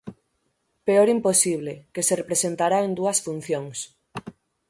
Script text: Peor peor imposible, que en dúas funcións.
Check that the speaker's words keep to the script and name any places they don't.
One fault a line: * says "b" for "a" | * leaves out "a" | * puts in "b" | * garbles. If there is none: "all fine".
* leaves out "peor"
* puts in "se representará"